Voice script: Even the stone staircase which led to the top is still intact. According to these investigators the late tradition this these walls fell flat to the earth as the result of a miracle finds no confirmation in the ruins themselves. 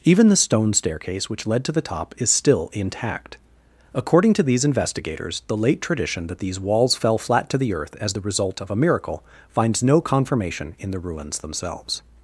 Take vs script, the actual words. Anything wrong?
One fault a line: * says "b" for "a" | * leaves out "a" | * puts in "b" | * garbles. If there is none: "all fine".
* says "that" for "this"